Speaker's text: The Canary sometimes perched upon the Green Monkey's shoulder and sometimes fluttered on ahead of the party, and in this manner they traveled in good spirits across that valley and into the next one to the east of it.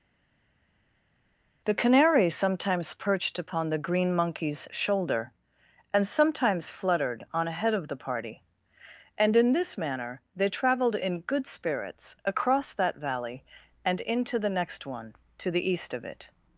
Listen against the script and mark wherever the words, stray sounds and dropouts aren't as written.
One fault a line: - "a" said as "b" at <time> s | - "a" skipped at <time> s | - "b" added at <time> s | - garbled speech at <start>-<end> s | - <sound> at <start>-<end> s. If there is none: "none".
none